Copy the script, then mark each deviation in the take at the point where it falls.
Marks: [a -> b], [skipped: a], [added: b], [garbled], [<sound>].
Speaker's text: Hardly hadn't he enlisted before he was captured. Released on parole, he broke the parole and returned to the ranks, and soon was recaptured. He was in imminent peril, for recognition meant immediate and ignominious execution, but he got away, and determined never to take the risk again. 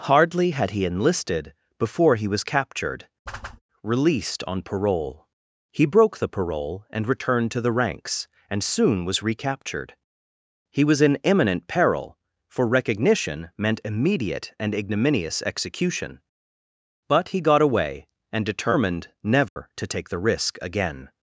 Hardly [hadn't -> had] he enlisted before he was captured. [whoosh] Released on parole, he broke the parole and returned to the ranks, and soon was recaptured. He was in imminent peril, for recognition meant immediate and ignominious execution, but he got away, and determined never [dropout] to take the risk again.